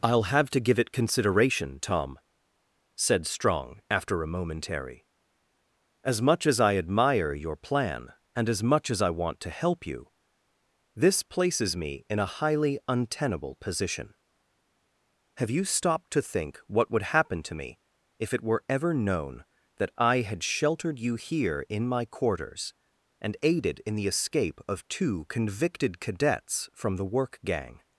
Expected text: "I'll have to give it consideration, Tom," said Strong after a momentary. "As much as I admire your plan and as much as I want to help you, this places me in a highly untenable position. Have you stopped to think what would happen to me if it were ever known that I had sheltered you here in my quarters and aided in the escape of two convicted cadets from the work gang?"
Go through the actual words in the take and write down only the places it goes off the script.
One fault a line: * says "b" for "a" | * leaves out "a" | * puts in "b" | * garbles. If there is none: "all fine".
all fine